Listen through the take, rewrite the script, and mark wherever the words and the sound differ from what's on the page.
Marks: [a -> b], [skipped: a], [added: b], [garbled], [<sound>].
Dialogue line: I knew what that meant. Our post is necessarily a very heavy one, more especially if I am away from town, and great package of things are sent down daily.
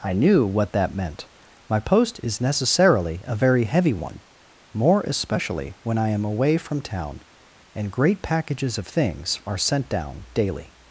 I knew what that meant. [Our -> My] post is necessarily a very heavy one, more especially [if -> when] I am away from town, and great [package -> packages] of things are sent down daily.